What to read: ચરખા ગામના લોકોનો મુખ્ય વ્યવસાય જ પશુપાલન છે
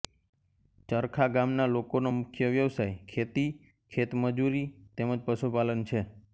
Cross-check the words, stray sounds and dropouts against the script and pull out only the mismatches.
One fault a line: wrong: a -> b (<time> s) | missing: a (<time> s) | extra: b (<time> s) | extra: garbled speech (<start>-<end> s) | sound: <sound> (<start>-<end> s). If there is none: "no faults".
extra: ખેતી ખેતમજૂરી તેમ (3.1 s)